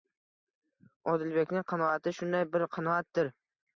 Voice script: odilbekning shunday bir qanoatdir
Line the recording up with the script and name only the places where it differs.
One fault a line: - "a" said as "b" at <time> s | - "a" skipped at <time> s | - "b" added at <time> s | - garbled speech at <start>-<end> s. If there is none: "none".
- "qanoati" added at 1.7 s